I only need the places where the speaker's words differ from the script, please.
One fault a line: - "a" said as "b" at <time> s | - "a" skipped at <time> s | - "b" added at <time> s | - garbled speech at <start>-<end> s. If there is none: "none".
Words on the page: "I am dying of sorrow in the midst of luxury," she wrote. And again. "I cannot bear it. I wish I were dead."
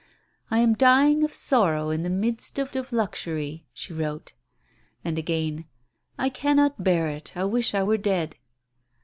- "of" added at 2.7 s